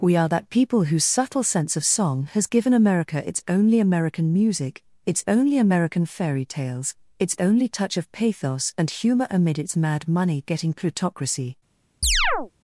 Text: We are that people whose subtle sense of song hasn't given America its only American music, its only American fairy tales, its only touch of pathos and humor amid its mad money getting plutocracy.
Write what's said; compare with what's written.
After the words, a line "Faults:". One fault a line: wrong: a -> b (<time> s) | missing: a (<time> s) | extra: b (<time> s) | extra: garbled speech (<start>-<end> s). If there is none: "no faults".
We are that people whose subtle sense of song has given America its only American music, its only American fairy tales, its only touch of pathos and humor amid its mad money getting plutocracy.
Faults:
wrong: hasn't -> has (2.3 s)